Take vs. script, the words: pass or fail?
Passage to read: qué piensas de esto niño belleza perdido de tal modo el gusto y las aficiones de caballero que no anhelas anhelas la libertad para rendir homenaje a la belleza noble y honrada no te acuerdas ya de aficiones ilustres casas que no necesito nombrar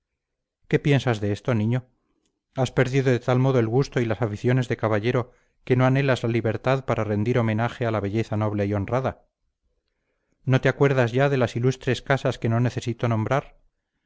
fail